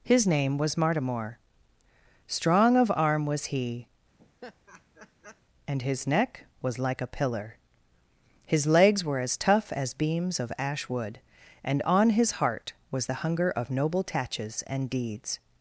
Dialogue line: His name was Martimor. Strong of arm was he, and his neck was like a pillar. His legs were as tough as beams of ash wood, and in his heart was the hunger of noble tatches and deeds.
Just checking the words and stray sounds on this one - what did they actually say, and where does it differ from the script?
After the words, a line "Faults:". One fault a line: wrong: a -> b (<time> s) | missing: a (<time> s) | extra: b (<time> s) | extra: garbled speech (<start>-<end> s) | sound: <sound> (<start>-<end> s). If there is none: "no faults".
His name was Martimor. Strong of arm was he, and his neck was like a pillar. His legs were as tough as beams of ash wood, and on his heart was the hunger of noble tatches and deeds.
Faults:
sound: laugh (4.2-5.4 s)
wrong: in -> on (11.8 s)